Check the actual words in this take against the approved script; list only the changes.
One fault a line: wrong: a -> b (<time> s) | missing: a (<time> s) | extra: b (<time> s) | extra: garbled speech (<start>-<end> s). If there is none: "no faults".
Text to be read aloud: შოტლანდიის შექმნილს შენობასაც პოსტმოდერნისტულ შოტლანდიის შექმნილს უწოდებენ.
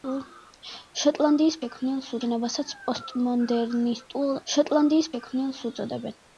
no faults